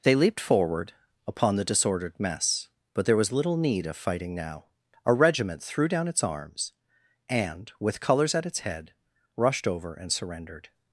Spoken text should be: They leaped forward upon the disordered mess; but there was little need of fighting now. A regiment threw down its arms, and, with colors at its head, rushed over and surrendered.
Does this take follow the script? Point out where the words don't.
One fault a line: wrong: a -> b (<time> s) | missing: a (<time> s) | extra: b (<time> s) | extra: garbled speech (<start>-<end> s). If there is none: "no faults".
no faults